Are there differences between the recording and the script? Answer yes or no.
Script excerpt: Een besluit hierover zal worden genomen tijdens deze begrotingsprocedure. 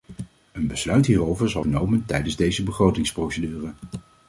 yes